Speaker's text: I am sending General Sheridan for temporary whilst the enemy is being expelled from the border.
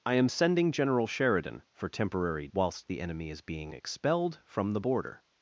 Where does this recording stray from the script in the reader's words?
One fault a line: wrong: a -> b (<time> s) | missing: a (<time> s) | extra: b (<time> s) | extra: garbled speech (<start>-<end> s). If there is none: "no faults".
no faults